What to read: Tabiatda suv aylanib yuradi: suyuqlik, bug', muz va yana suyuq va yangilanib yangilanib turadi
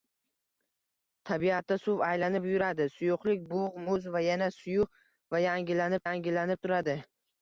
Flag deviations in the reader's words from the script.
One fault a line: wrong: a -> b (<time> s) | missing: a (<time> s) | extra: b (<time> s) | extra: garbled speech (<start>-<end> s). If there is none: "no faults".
no faults